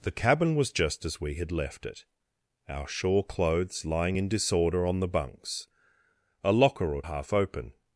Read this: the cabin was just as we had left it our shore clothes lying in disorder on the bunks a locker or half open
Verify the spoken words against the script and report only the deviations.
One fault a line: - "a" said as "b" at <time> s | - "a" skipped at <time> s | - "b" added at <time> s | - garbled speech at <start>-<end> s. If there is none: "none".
none